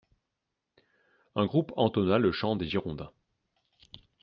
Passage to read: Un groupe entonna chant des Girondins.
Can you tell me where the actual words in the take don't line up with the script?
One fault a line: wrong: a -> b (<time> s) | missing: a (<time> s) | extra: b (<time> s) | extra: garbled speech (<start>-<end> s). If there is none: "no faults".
extra: le (2.2 s)